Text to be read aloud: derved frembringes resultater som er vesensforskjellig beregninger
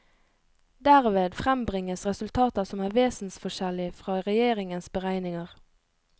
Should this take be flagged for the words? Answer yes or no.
yes